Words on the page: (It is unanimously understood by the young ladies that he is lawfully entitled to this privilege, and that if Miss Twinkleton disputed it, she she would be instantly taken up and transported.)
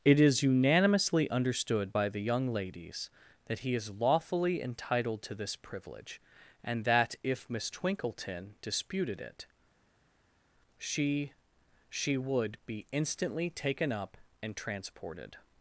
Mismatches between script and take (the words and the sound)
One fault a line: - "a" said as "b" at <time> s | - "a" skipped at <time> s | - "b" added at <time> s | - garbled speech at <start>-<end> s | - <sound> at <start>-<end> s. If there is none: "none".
none